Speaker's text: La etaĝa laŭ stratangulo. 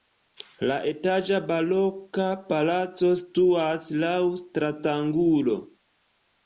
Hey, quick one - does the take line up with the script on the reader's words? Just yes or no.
no